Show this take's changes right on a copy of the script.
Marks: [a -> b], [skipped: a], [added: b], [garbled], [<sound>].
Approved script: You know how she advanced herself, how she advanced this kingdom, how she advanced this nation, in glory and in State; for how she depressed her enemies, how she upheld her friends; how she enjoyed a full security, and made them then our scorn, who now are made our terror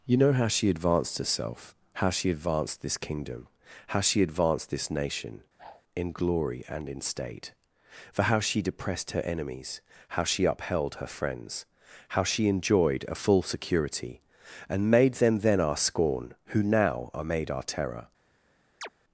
You know how she advanced herself, how she advanced this kingdom, how she advanced this nation, [whoosh] in glory and in State; for how she depressed her enemies, how she upheld her friends; how she enjoyed a full security, and made them then our scorn, who now are made our terror [chirp]